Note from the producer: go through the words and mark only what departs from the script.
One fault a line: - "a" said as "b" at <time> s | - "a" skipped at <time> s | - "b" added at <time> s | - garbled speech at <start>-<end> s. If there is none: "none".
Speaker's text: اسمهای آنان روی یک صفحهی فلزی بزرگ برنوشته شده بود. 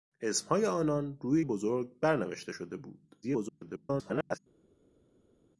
- "یک صفحهی فلزی" skipped at 1.4 s
- garbled speech at 3.2-4.4 s